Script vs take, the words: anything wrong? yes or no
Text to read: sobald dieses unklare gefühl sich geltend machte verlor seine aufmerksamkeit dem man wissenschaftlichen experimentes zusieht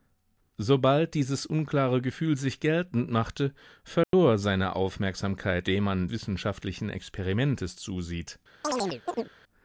no